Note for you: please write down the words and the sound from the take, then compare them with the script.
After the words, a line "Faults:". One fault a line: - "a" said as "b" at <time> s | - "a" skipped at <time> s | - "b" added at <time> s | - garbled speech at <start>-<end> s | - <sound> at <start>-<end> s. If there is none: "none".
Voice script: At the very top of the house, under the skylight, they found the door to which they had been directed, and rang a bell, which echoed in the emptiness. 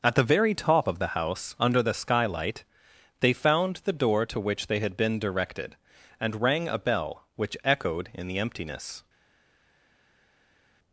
At the very top of the house, under the skylight, they found the door to which they had been directed, and rang a bell, which echoed in the emptiness.
Faults:
none